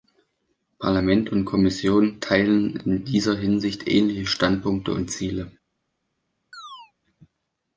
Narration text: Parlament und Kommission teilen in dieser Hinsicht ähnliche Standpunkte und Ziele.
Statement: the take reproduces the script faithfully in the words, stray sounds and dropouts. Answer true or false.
false